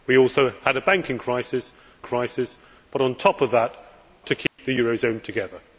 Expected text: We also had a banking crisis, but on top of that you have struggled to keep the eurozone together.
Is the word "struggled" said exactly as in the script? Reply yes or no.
no